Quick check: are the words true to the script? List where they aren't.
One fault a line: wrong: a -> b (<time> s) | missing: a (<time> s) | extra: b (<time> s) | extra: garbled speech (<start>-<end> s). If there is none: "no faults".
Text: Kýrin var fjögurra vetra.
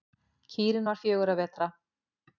no faults